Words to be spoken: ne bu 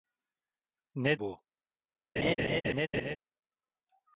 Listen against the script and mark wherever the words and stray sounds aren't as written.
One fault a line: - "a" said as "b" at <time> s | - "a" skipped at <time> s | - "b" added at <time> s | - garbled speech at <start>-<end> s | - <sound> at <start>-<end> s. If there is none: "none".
- laugh at 2.2-3.2 s